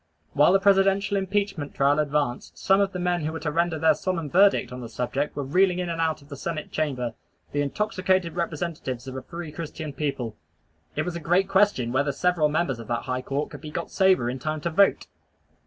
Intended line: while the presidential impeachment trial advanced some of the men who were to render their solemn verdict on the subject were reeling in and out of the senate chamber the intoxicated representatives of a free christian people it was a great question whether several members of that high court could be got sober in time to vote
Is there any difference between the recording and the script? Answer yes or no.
no